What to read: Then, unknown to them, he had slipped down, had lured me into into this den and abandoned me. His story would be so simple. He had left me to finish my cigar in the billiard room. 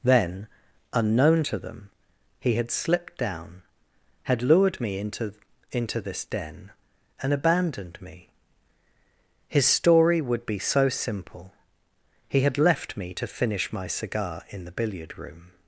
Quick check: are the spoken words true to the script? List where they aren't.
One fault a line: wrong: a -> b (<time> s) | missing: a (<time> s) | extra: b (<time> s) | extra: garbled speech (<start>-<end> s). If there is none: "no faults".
no faults